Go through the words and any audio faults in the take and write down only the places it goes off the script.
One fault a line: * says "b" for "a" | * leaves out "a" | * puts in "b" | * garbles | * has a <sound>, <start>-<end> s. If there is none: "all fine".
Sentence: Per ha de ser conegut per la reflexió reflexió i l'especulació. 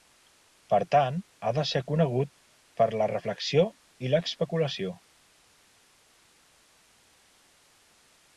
* puts in "tant"
* leaves out "reflexió"